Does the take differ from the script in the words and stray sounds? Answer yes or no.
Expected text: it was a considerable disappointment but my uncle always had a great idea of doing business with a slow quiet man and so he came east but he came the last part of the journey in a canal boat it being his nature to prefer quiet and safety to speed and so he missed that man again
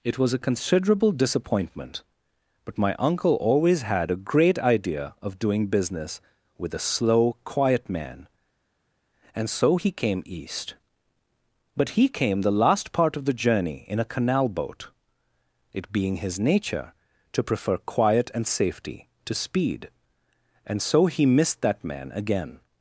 no